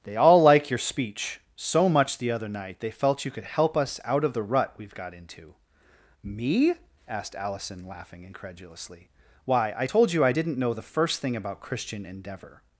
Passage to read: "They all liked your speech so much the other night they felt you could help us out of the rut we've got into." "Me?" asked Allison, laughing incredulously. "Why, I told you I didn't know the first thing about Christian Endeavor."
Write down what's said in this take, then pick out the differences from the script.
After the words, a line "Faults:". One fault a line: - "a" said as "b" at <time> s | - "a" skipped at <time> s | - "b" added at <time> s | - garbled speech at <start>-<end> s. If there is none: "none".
"They all like your speech so much the other night they felt you could help us out of the rut we've got into." "Me?" asked Allison, laughing incredulously. "Why, I told you I didn't know the first thing about Christian Endeavor."
Faults:
- "liked" said as "like" at 0.4 s